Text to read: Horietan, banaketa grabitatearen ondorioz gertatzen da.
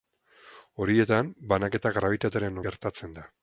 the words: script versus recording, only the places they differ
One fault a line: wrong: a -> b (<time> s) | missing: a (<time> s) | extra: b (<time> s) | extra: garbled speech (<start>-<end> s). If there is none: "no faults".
missing: ondorioz (2.6 s)